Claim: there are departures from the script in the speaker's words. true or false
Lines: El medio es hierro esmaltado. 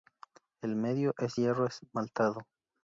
false